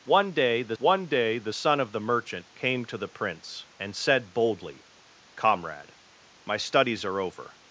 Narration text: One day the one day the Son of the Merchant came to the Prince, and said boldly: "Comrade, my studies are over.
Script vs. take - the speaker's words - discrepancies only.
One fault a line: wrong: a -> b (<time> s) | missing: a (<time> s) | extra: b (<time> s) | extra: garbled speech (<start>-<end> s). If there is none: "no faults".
no faults